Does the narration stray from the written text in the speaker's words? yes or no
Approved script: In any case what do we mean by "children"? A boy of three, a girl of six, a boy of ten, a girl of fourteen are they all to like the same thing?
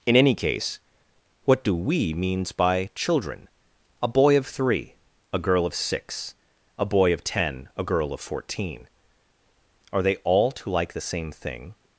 yes